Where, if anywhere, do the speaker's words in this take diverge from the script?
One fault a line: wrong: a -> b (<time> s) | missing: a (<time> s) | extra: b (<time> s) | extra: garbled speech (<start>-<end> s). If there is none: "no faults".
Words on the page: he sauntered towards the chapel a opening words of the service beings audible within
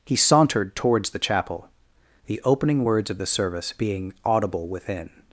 wrong: a -> the (2.2 s)
wrong: beings -> being (3.8 s)